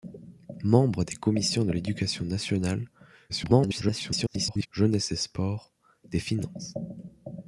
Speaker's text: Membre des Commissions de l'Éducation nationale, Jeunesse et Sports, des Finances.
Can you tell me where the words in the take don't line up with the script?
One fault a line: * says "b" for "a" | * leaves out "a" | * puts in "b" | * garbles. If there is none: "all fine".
* garbles